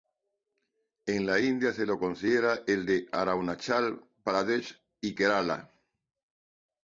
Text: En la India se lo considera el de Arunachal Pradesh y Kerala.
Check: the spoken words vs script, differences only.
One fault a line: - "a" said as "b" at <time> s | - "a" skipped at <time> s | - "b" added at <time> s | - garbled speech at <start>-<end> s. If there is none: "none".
none